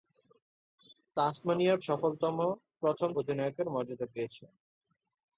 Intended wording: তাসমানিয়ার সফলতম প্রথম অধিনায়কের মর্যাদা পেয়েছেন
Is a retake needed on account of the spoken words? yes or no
no